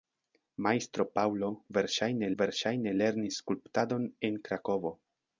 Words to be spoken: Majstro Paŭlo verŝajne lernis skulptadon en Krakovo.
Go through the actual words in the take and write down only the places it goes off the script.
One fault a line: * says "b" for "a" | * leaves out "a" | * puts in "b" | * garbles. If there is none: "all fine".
* puts in "verŝajne"